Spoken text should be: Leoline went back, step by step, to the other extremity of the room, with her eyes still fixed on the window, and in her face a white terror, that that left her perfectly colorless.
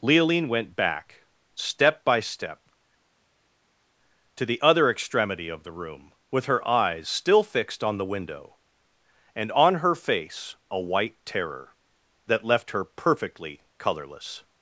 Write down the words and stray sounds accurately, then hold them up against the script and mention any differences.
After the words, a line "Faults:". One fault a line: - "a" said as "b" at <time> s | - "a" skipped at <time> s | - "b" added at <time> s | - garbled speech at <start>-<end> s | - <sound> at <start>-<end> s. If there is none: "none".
Leoline went back, step by step, to the other extremity of the room, with her eyes still fixed on the window, and on her face a white terror, that left her perfectly colorless.
Faults:
- "in" said as "on" at 9.5 s
- "that" skipped at 12.4 s